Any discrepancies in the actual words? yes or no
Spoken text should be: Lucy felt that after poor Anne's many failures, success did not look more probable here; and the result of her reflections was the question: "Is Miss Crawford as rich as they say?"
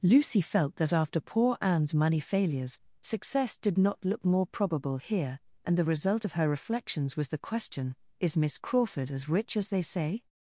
yes